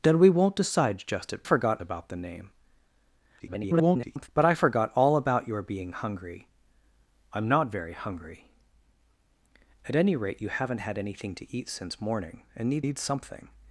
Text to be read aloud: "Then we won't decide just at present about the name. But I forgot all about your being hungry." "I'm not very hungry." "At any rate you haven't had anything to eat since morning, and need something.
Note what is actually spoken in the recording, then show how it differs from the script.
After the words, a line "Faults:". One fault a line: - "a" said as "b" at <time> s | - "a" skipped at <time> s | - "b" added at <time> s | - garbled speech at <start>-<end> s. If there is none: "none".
"Then we won't decide just at forgot about the name. [garbled] But I forgot all about your being hungry." "I'm not very hungry." "At any rate you haven't had anything to eat since morning, and need need something.
Faults:
- "present" said as "forgot" at 1.4 s
- garbled speech at 3.4-4.3 s
- "need" added at 12.8 s